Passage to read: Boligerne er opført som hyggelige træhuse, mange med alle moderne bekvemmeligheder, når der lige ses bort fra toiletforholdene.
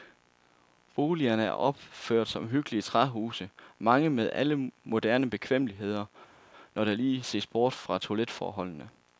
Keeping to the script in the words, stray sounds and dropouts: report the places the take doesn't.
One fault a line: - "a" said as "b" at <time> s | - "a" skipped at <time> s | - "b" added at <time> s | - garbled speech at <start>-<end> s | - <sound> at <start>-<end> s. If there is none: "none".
none